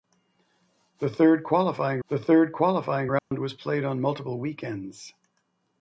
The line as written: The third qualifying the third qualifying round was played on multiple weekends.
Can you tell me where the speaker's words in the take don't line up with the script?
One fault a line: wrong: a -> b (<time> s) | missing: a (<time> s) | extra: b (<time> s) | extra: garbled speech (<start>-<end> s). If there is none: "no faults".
no faults